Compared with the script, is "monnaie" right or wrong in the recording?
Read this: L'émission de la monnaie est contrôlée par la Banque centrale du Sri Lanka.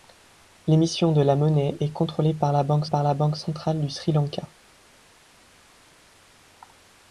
right